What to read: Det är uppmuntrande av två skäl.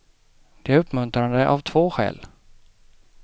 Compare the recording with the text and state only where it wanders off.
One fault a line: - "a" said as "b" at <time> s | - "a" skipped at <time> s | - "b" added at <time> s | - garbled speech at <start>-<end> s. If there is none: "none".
none